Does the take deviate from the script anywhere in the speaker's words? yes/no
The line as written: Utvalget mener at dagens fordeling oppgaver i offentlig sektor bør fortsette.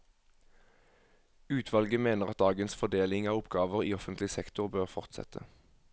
yes